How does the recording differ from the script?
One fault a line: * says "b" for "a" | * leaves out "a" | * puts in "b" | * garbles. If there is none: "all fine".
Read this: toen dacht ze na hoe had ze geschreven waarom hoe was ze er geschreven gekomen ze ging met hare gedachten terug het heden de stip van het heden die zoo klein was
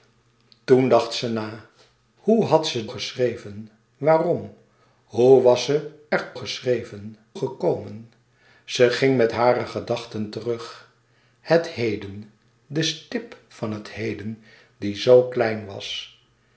all fine